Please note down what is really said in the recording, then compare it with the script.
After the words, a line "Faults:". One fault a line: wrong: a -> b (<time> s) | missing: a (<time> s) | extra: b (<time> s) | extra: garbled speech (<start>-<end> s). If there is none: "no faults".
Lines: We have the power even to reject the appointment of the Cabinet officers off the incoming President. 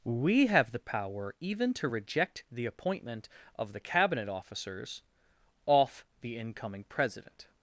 We have the power even to reject the appointment of the Cabinet officers off the incoming President.
Faults:
no faults